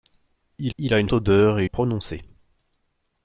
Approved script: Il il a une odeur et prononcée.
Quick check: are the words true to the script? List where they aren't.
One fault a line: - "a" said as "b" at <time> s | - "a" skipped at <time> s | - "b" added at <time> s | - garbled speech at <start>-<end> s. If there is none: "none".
none